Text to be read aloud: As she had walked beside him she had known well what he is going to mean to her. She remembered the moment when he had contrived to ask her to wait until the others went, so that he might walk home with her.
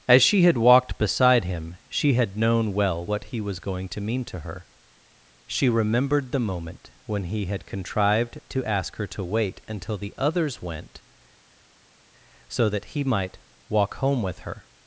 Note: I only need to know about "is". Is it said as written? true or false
false